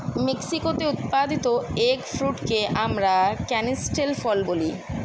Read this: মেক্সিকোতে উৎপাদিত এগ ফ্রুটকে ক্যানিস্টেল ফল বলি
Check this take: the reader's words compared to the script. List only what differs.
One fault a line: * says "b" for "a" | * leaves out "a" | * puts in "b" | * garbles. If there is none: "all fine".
* puts in "আমরা"